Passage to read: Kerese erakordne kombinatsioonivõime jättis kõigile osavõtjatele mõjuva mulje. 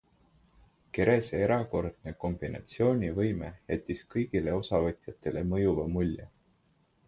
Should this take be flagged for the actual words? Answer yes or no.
no